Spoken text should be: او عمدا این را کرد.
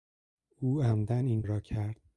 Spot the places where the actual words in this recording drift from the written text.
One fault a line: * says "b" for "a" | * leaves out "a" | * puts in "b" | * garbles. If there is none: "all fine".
all fine